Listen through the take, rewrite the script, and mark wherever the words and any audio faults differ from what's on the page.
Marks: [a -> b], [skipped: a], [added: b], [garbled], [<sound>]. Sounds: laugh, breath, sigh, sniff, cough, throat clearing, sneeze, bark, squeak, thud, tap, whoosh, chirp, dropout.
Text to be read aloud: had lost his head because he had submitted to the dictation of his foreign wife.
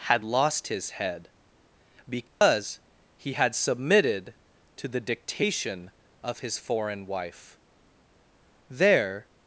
had lost his head because [dropout] he had submitted to the dictation of his foreign wife. [added: There]